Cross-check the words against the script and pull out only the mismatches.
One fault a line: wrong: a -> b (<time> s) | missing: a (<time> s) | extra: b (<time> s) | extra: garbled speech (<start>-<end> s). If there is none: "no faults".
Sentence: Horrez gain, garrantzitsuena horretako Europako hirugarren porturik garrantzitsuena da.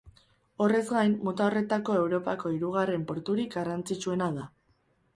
wrong: garrantzitsuena -> mota (1.3 s)